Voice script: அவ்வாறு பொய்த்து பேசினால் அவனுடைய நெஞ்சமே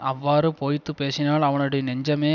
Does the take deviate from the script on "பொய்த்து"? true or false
false